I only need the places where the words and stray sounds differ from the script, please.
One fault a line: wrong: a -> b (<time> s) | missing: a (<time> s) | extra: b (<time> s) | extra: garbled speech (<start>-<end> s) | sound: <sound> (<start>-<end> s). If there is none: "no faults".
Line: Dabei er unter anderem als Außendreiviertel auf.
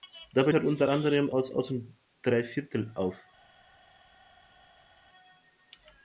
no faults